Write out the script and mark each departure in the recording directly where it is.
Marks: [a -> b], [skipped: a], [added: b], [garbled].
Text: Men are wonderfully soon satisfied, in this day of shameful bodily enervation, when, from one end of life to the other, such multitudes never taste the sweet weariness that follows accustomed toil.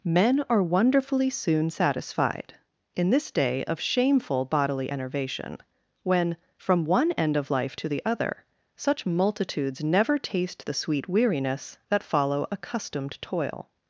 Men are wonderfully soon satisfied, in this day of shameful bodily enervation, when, from one end of life to the other, such multitudes never taste the sweet weariness that [follows -> follow] accustomed toil.